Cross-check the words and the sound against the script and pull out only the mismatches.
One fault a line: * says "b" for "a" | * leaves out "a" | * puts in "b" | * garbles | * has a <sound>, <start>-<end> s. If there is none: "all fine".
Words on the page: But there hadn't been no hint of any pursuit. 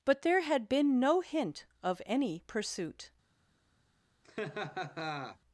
* says "had" for "hadn't"
* has a laugh, 4.2-5.4 s